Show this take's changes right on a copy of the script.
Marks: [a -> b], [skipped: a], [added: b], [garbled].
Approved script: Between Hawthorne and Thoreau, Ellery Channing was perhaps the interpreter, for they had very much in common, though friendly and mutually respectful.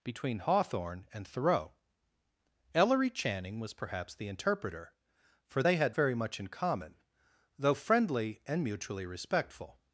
Between Hawthorne and Thoreau, Ellery Channing was perhaps the interpreter, for they had very much in common, though friendly and mutually respectful.